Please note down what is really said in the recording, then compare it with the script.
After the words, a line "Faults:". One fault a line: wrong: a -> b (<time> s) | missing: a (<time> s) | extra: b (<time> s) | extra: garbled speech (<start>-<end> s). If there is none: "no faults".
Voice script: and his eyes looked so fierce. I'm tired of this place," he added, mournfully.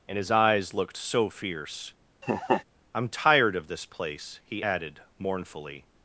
and his eyes looked so fierce. I'm tired of this place," he added, mournfully.
Faults:
no faults